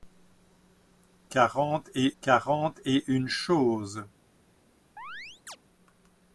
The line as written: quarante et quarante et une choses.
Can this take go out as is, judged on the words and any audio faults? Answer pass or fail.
fail